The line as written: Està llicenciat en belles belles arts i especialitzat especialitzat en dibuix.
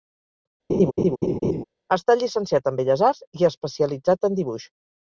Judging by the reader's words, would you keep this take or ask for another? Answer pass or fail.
fail